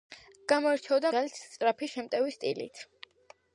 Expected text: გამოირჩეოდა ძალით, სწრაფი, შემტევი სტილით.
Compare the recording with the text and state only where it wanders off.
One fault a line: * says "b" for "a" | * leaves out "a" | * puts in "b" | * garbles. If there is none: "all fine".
all fine